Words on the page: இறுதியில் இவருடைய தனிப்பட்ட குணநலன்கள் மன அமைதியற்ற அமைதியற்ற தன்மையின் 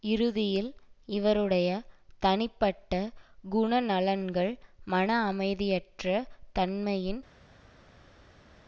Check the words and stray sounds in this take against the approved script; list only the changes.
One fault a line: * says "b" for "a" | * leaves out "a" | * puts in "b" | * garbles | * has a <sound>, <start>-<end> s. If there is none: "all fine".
* leaves out "அமைதியற்ற"